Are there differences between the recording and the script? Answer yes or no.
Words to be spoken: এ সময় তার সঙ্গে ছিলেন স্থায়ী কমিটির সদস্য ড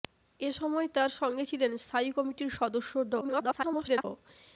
yes